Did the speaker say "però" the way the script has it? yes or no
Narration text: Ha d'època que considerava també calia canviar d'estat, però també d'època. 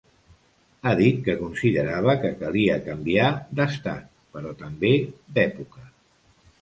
yes